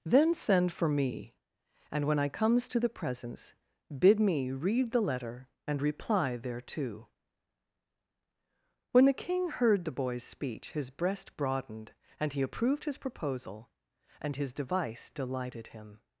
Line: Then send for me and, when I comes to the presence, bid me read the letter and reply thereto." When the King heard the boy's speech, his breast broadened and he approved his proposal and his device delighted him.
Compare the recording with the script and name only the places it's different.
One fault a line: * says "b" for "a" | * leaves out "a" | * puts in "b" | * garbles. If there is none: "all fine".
all fine